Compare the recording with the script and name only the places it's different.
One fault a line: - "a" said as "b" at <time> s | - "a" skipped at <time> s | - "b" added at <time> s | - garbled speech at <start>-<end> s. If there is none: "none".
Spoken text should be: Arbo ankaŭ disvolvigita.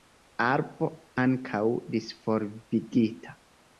none